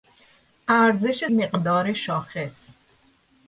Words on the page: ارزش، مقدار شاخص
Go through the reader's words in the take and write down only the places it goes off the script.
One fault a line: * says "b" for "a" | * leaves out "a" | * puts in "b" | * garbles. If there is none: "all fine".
all fine